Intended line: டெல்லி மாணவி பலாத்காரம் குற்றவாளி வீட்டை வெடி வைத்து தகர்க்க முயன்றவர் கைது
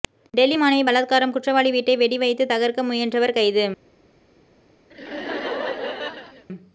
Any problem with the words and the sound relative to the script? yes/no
yes